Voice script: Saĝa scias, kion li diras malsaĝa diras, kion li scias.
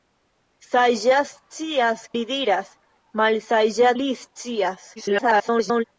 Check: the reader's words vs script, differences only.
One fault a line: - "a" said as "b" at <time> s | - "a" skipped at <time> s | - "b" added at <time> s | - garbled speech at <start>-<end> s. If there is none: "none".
- "kion" skipped at 2.0 s
- "diras kion" skipped at 3.9 s
- garbled speech at 5.0-5.8 s